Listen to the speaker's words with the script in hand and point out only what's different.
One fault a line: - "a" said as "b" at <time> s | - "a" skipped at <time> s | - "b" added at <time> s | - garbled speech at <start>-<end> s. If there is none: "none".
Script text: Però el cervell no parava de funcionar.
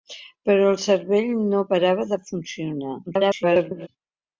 - garbled speech at 3.1-3.9 s